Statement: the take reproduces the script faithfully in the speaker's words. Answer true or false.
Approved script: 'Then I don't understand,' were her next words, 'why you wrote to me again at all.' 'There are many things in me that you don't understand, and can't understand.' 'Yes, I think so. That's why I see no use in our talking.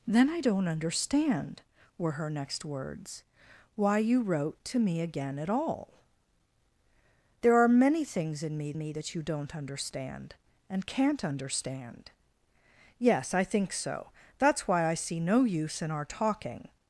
false